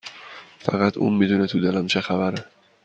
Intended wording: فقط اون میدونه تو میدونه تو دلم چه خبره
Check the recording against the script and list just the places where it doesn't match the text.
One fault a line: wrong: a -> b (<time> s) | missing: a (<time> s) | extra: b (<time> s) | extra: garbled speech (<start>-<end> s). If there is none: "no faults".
missing: میدونه تو (1.6 s)